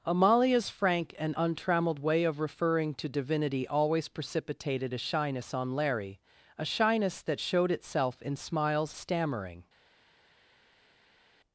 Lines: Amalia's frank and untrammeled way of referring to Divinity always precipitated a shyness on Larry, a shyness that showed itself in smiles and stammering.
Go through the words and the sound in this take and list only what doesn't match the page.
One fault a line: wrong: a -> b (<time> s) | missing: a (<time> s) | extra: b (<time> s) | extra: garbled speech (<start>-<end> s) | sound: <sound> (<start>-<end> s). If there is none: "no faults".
missing: and (8.9 s)